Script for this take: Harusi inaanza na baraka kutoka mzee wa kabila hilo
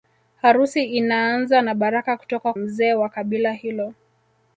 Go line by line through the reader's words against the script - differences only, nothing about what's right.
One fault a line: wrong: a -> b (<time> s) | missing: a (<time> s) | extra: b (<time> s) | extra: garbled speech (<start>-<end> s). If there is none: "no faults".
no faults